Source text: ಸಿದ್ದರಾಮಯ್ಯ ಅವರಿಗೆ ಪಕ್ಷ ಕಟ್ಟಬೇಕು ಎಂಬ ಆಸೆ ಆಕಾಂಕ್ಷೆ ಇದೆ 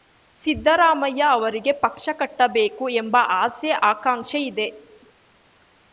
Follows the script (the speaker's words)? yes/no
yes